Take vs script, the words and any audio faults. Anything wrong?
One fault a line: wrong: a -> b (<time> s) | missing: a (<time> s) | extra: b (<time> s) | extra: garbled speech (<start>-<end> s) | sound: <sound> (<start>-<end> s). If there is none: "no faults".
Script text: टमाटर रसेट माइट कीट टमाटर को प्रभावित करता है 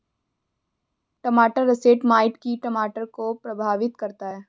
no faults